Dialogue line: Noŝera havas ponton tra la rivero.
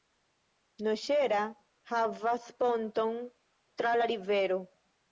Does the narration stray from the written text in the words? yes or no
no